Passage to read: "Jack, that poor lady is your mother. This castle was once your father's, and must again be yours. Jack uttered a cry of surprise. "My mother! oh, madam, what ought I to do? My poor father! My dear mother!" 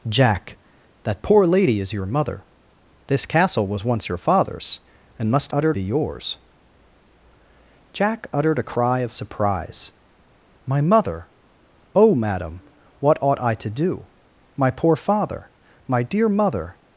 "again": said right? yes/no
no